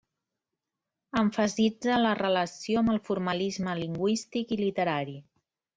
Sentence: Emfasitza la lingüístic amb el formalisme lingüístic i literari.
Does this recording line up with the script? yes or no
no